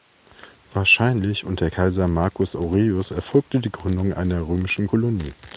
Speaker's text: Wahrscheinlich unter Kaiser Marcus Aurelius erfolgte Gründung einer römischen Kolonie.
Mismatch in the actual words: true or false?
true